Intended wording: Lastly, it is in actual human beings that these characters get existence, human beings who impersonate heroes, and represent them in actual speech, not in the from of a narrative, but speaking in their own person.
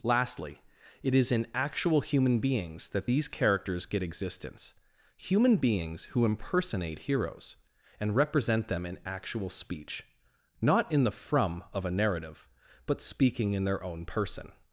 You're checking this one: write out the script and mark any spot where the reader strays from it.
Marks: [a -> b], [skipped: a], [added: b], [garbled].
Lastly, it is in actual human beings that these characters get existence, human beings who impersonate heroes, and represent them in actual speech, not in the from of a narrative, but speaking in their own person.